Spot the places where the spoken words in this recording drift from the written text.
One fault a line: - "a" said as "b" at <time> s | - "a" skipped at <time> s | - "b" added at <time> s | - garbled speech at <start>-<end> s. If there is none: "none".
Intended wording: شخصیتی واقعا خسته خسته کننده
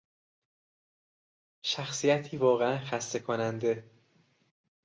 - "خسته" skipped at 3.2 s